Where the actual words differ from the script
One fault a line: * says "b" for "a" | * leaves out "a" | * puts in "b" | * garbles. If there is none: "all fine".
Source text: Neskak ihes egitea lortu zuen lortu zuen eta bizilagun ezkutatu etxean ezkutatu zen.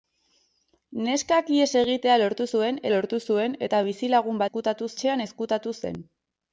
all fine